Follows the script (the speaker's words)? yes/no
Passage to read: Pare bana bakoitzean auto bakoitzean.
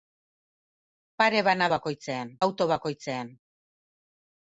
yes